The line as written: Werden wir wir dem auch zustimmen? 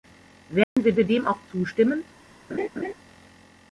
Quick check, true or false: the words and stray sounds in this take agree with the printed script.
false